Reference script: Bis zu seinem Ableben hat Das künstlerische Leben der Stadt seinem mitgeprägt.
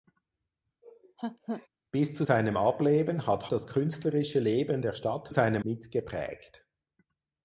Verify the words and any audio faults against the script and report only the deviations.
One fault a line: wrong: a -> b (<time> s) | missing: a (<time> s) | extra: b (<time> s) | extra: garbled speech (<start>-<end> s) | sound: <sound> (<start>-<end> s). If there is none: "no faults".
sound: laugh (0.8-1.7 s)